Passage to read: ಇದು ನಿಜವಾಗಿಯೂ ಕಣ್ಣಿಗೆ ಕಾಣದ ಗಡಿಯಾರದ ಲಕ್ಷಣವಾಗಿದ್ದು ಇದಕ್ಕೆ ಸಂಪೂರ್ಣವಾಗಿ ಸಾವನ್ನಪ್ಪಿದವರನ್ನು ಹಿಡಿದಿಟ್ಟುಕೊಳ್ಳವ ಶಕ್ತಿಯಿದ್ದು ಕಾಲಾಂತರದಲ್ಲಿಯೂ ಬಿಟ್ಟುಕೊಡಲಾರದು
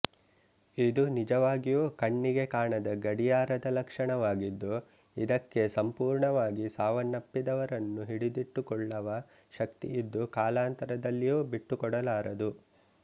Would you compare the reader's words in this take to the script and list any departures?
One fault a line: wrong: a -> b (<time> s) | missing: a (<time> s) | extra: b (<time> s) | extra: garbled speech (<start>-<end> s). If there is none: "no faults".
no faults